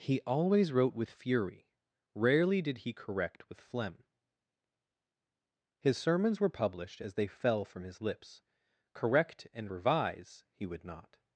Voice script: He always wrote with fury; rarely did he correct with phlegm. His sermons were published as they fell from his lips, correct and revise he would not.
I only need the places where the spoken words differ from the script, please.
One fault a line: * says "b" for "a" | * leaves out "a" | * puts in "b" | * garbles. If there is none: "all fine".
all fine